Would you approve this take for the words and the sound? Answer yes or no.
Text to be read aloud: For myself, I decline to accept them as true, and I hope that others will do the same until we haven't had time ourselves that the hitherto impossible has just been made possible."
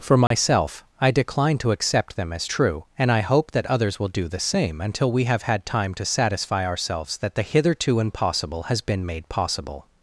no